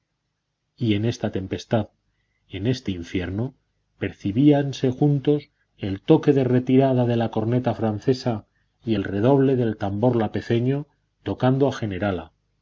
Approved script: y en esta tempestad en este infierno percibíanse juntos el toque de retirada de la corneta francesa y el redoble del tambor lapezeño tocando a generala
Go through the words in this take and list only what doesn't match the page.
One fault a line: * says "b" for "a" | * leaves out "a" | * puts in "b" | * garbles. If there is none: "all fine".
all fine